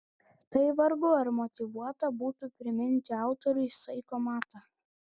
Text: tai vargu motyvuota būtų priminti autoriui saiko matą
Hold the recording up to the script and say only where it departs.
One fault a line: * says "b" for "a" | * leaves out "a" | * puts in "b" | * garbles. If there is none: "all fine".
* puts in "ar"